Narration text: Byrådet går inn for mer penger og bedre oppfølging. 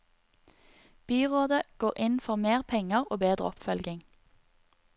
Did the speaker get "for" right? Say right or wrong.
right